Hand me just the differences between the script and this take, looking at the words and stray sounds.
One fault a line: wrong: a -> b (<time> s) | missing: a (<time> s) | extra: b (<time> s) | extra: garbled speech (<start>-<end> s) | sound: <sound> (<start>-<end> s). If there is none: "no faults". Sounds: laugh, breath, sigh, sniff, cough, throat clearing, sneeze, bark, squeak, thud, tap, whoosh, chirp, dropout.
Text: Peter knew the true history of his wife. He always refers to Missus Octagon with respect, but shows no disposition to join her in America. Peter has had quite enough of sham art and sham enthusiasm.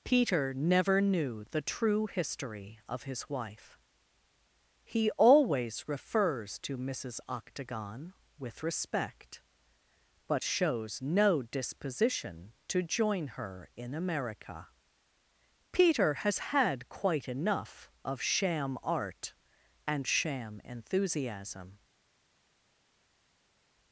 extra: never (0.5 s)